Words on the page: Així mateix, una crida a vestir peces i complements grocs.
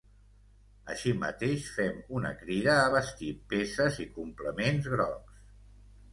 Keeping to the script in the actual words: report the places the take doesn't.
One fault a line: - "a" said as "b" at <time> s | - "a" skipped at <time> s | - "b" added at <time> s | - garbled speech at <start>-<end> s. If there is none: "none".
- "fem" added at 1.8 s